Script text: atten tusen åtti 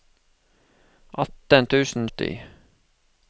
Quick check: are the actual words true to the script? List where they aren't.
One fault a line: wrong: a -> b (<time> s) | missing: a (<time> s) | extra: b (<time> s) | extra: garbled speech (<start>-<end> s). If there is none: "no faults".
no faults